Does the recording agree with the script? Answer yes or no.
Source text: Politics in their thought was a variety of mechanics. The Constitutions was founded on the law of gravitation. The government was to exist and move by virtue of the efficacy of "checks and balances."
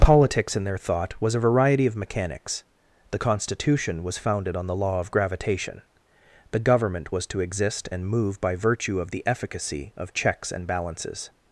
no